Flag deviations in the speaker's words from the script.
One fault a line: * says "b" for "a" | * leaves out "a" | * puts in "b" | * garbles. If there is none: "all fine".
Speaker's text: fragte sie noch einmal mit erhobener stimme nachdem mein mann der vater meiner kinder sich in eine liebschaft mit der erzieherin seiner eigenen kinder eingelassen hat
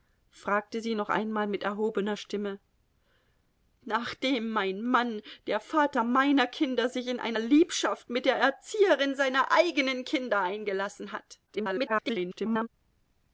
* garbles